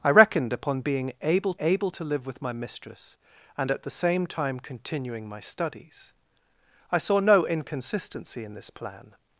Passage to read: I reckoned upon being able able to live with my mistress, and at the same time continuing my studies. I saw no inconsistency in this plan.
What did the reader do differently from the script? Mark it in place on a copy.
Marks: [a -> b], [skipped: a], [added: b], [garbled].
I reckoned upon being able able to live with my mistress, and at the same time continuing my studies. I saw no inconsistency in this plan.